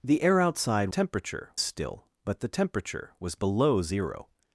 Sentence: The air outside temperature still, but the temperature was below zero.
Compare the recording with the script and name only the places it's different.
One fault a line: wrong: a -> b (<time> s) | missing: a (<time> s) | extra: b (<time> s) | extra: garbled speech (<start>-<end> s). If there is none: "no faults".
no faults